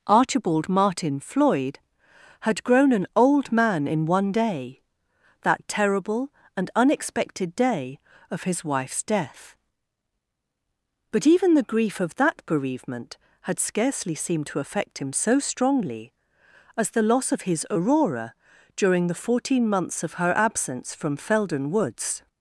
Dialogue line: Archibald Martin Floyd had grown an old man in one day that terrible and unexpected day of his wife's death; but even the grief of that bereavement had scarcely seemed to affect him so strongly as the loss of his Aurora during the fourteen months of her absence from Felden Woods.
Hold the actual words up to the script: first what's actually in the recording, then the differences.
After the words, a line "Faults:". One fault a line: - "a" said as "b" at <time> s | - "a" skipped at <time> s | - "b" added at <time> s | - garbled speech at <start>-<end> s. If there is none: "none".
Archibald Martin Floyd had grown an old man in one day that terrible and unexpected day of his wife's death; but even the grief of that bereavement had scarcely seemed to affect him so strongly as the loss of his Aurora during the fourteen months of her absence from Felden Woods.
Faults:
none